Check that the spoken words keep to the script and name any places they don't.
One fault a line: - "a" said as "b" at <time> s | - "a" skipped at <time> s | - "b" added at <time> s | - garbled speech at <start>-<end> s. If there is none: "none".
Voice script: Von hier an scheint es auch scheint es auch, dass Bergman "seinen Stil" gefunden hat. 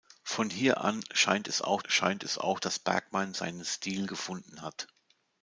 none